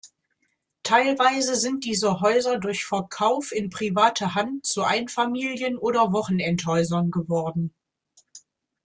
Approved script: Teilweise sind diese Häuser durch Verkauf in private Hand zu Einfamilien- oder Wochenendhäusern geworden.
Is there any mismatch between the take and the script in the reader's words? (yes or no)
no